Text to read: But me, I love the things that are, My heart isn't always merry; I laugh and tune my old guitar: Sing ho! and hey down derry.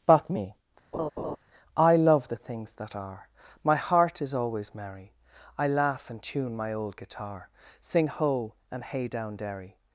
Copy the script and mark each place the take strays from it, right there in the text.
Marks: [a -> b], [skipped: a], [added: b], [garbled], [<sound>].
But me, [laugh] I love the things that are, My heart [isn't -> is] always merry; I laugh and tune my old guitar: Sing ho! and hey down derry.